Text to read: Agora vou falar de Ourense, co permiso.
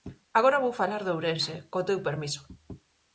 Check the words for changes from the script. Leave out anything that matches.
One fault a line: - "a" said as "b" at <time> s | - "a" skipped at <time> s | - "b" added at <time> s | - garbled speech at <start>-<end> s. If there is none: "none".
- "teu" added at 1.9 s